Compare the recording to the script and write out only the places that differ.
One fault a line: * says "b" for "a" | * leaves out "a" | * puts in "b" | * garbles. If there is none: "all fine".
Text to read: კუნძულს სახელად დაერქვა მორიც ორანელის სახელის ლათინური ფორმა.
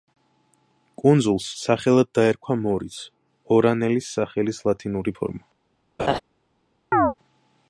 all fine